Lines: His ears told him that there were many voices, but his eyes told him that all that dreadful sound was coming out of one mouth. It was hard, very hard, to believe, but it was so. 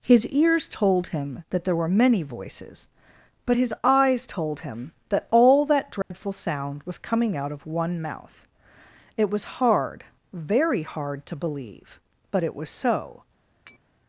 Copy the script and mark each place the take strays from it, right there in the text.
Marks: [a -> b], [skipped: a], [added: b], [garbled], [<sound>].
His ears told him that there were many voices, but his eyes told him that all that dreadful [dropout] sound was coming out of one mouth. It was hard, very hard, to believe, but it was so. [tap]